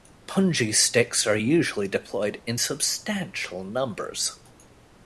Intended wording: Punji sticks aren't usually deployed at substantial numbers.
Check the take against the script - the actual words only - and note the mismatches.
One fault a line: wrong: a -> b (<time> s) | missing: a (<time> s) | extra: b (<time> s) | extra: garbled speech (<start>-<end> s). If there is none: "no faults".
wrong: aren't -> are (1.3 s)
wrong: at -> in (2.5 s)